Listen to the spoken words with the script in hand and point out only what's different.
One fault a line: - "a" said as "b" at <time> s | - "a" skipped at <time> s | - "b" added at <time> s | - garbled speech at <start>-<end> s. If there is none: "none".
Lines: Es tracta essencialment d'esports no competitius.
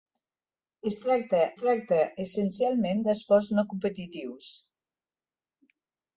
- "tracta" added at 1.6 s